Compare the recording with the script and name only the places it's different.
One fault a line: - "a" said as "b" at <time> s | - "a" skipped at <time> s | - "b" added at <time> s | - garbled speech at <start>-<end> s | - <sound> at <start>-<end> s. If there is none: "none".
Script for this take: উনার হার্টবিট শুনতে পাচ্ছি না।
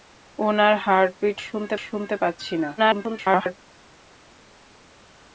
- "শুনতে" added at 1.8 s
- garbled speech at 2.8-3.6 s